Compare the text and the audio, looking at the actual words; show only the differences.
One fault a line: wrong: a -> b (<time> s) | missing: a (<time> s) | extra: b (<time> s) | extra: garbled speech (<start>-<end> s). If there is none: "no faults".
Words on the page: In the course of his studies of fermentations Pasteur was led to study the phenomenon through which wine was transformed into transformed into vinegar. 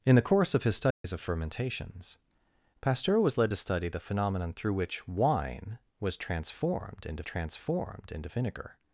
no faults